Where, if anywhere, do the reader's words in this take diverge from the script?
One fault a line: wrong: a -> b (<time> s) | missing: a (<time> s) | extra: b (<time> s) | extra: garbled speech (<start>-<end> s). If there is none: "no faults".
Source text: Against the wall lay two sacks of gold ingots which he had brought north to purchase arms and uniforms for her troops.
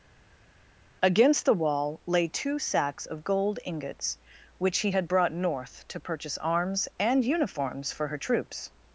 no faults